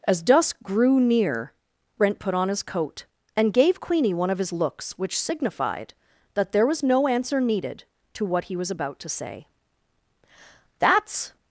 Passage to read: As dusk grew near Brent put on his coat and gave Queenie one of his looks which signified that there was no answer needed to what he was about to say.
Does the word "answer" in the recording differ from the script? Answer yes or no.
no